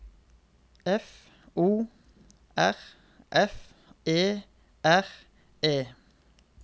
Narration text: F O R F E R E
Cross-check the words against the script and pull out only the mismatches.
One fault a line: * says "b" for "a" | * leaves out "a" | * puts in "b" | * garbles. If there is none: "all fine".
all fine